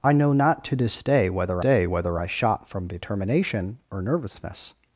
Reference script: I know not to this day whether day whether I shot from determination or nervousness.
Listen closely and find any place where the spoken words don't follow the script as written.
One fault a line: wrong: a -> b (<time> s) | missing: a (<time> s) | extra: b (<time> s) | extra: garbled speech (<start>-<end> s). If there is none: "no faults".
no faults